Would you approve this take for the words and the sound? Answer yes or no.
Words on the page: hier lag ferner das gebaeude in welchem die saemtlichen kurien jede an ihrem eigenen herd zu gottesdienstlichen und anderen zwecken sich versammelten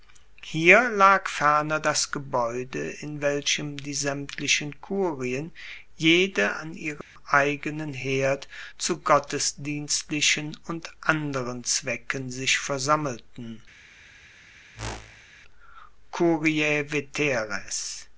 no